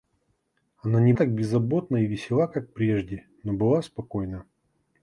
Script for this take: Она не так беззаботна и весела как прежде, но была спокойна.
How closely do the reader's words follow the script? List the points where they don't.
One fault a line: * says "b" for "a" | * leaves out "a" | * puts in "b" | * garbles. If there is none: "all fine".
all fine